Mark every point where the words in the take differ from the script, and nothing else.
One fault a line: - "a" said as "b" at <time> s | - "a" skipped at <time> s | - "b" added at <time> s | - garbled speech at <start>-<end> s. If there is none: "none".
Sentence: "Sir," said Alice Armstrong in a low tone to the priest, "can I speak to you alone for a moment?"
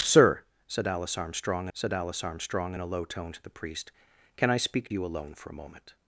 - "said Alice Armstrong" added at 1.7 s
- "to" skipped at 4.9 s